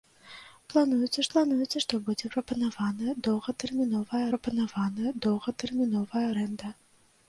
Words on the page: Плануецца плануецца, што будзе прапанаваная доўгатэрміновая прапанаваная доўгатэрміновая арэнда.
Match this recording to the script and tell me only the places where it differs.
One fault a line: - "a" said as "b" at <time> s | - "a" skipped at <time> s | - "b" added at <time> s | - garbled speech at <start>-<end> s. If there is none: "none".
none